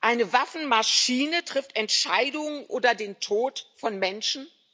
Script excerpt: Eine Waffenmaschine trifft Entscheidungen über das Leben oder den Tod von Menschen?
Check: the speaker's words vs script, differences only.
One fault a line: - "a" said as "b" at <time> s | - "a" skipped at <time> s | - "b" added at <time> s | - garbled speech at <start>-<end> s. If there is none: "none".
- "über das Leben" skipped at 2.7 s